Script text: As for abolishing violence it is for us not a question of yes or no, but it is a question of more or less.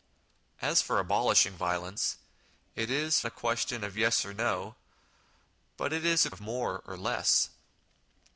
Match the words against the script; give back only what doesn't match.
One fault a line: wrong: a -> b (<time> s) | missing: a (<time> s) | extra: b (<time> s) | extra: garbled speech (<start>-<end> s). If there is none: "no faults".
missing: for us not (3.2 s)
missing: question (6.3 s)